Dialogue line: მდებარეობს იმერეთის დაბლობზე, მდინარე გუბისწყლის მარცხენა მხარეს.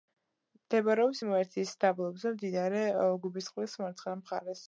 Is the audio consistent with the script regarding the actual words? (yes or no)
yes